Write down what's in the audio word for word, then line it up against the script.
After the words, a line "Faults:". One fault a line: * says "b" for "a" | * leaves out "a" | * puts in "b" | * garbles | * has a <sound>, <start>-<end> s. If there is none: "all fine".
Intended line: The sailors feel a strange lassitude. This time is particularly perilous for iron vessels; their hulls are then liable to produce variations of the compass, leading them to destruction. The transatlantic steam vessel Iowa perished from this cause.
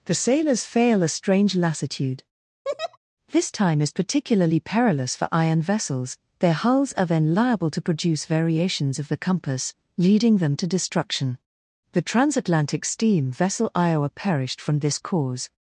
The sailors fail a strange lassitude. This time is particularly perilous for iron vessels; their hulls are then liable to produce variations of the compass, leading them to destruction. The transatlantic steam vessel Iowa perished from this cause.
Faults:
* says "fail" for "feel"
* has a laugh, 2.6-3.0 s